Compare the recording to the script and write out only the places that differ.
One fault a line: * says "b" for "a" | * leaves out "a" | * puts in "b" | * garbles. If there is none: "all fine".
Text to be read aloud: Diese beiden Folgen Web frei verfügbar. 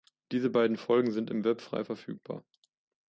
* puts in "sind im"